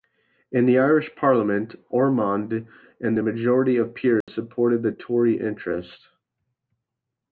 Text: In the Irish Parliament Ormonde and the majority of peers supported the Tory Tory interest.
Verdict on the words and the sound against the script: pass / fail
fail